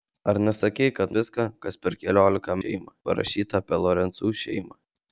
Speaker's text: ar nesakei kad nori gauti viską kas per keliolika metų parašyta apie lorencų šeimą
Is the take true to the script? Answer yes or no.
no